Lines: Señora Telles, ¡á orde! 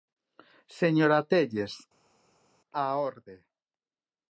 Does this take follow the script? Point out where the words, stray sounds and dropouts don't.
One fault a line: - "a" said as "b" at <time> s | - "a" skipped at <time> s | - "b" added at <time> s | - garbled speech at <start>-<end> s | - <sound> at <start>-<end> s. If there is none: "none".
none